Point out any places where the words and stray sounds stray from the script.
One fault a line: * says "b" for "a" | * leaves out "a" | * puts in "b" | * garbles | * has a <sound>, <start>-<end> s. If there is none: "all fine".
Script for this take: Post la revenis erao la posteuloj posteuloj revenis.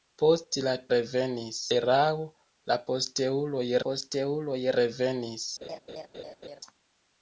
* has a laugh, 5.6-6.6 s